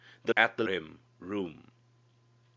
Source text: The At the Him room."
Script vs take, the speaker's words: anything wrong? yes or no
no